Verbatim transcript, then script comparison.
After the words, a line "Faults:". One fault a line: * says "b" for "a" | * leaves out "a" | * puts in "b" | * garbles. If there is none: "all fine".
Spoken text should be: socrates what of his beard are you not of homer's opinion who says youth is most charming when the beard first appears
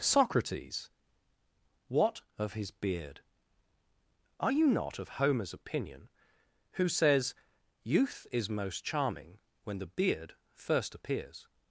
socrates what of his beard are you not of homer's opinion who says youth is most charming when the beard first appears
Faults:
all fine